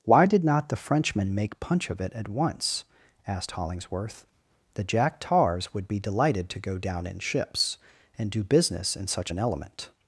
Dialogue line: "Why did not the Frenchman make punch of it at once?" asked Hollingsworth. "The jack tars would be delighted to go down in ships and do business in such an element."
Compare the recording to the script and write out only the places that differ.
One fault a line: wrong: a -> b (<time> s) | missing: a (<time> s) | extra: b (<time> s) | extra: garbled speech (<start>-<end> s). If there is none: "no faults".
no faults